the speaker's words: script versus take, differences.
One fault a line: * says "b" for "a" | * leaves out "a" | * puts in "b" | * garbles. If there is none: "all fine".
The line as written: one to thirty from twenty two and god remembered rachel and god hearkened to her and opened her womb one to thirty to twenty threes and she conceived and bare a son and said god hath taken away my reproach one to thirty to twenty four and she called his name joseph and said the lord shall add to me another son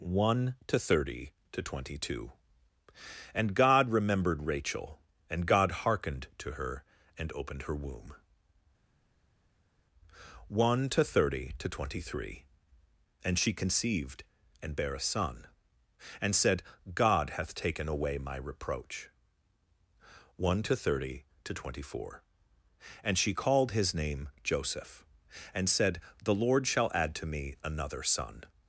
* says "to" for "from"
* says "three" for "threes"